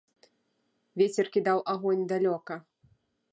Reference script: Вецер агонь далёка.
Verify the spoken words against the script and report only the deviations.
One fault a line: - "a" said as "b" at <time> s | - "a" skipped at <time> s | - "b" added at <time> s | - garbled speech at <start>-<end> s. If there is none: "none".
- "кідаў" added at 1.4 s